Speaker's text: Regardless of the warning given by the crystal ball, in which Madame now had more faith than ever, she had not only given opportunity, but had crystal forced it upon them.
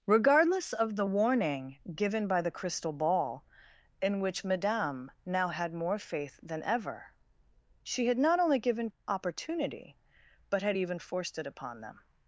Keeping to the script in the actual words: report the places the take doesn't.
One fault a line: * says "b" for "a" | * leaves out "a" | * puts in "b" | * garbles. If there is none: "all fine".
* says "even" for "crystal"